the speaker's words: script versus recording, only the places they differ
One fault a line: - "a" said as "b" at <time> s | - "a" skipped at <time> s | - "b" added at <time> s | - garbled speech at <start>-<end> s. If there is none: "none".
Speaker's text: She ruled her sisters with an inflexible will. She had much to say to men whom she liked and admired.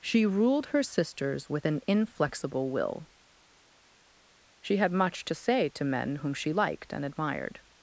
none